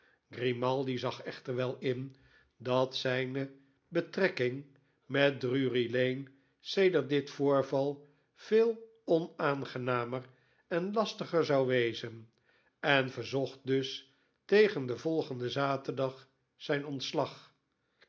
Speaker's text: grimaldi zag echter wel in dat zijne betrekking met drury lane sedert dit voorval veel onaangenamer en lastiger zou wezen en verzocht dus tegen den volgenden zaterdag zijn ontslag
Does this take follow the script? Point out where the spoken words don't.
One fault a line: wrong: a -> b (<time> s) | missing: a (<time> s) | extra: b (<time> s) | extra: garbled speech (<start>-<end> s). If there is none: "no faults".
no faults